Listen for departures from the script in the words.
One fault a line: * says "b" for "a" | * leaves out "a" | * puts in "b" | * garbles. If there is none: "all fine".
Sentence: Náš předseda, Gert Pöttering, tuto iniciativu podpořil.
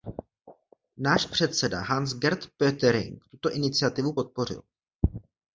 * puts in "Hans"